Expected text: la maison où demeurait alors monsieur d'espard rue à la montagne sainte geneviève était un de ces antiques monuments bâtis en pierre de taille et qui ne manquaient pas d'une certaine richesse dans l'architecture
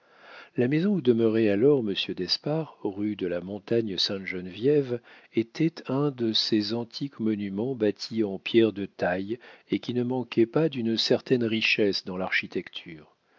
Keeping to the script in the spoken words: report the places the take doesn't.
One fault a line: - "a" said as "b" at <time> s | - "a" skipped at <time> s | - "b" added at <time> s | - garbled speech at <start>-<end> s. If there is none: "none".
- "à" said as "de" at 3.1 s